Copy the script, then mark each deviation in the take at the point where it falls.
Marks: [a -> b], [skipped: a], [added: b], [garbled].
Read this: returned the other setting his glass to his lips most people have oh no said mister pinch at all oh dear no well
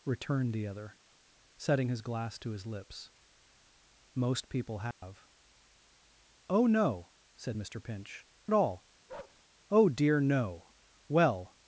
returned the other setting his glass to his lips most people have oh no said mister pinch at all oh dear no well